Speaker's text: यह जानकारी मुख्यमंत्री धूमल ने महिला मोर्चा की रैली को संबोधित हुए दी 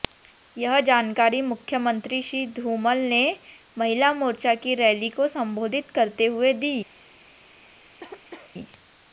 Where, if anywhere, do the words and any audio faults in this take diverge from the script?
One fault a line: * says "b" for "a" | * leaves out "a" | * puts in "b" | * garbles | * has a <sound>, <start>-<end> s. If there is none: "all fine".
* puts in "श्री"
* puts in "करते"
* has a cough, 8.0-8.5 s